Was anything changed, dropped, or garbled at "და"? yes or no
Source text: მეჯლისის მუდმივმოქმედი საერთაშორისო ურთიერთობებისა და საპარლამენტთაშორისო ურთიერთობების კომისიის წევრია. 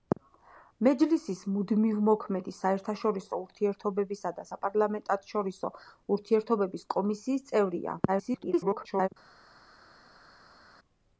no